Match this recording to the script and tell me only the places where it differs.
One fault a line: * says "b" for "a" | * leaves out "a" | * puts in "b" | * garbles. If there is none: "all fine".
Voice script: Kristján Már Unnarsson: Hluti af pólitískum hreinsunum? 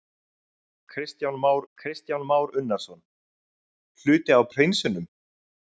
* puts in "kristján Már"
* leaves out "pólitískum"